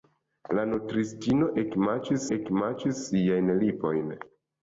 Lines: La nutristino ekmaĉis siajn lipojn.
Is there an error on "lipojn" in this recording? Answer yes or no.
no